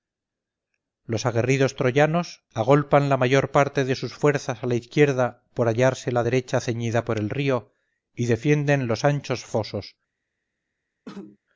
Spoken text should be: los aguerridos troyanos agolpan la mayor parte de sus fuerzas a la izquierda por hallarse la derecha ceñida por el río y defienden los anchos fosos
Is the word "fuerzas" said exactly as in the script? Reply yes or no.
yes